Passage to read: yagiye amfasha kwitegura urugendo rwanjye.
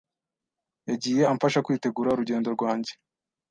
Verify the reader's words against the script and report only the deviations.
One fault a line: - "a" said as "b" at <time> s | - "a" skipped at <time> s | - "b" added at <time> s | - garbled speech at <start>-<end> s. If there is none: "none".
none